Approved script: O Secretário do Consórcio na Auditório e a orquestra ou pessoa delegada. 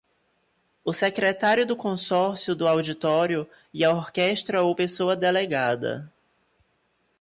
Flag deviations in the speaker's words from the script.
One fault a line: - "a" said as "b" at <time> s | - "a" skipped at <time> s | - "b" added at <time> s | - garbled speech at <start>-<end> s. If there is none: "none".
- "na" said as "do" at 2.5 s